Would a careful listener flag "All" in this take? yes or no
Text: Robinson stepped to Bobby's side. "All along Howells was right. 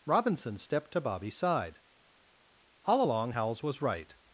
no